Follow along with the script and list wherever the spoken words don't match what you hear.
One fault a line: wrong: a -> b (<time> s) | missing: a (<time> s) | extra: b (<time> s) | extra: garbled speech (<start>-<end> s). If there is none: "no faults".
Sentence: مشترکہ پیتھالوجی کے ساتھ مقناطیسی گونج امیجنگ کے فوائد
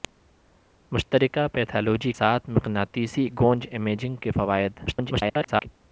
missing: کے (2.1 s)
extra: garbled speech (4.9-5.7 s)